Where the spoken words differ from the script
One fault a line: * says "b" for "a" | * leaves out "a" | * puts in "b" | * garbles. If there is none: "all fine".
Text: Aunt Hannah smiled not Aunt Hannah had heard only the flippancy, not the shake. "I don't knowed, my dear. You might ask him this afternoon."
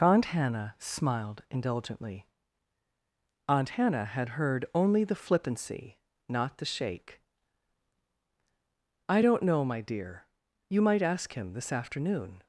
* says "indulgently" for "not"
* says "know" for "knowed"